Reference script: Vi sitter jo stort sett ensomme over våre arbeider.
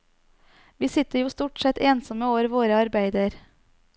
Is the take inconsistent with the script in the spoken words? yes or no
no